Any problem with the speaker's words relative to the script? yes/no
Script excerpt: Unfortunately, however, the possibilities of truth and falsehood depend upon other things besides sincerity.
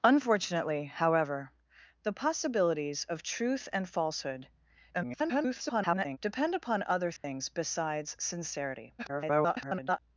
yes